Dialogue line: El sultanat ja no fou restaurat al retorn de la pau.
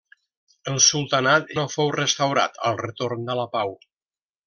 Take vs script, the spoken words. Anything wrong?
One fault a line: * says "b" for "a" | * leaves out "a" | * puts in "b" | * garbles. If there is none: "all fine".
* leaves out "ja"